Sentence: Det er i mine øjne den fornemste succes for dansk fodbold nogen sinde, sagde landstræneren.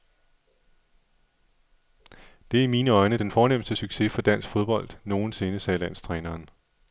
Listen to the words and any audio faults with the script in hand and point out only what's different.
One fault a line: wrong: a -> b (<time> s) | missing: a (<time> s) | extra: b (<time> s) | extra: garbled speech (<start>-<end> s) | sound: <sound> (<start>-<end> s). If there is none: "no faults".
no faults